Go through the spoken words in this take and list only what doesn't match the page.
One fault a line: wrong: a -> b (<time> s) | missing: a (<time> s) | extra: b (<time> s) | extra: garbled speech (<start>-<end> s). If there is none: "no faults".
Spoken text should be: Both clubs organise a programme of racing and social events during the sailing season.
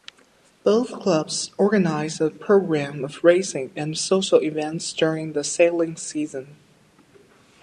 no faults